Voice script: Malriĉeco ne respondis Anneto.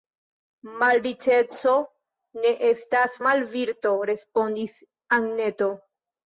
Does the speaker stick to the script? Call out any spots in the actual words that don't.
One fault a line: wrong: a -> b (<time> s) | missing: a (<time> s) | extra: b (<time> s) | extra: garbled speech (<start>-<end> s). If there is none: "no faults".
extra: estas malvirto (2.7 s)